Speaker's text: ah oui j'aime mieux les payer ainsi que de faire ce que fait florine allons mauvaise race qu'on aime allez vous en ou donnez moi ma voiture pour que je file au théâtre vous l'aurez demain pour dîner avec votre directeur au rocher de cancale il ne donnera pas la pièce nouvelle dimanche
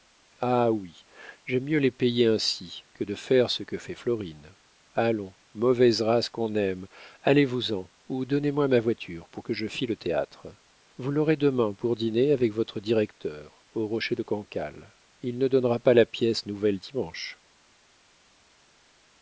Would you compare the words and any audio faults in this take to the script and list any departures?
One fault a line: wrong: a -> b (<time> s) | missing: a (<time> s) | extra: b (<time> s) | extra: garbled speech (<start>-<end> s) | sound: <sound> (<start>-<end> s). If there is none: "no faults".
no faults